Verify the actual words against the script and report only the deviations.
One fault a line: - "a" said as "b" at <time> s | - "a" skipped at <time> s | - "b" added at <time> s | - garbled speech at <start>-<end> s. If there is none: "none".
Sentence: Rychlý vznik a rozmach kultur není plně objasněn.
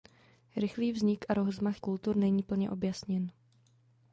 none